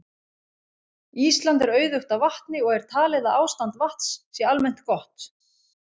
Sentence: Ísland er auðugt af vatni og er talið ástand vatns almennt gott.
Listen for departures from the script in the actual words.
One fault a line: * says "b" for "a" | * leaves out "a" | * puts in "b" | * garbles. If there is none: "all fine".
* puts in "að"
* puts in "sé"